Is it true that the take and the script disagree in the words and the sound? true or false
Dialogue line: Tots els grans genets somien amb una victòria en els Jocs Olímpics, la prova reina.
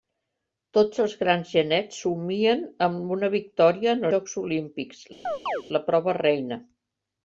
true